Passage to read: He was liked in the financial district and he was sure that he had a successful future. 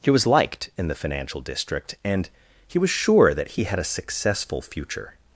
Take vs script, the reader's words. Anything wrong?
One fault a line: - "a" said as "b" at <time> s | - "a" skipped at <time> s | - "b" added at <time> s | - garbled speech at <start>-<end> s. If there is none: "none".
none